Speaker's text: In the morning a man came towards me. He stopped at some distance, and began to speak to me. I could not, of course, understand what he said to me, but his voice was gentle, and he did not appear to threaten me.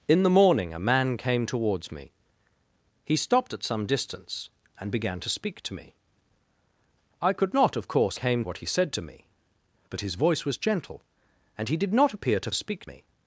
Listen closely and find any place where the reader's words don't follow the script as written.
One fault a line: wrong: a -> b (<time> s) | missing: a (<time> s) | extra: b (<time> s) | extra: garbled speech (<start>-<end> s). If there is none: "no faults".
wrong: understand -> came (8.1 s)
wrong: threaten -> speak (12.5 s)